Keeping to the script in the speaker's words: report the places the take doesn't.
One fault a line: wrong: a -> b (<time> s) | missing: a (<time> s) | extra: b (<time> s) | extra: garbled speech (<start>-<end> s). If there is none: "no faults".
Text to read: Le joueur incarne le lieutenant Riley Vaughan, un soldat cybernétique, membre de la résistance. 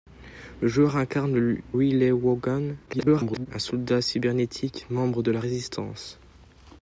missing: lieutenant (1.6 s)
extra: garbled speech (2.9-3.5 s)